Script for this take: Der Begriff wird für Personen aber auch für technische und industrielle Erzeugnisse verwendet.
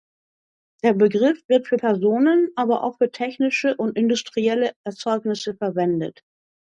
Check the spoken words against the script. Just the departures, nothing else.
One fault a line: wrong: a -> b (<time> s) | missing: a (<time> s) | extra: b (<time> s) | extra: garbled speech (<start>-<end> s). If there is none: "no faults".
no faults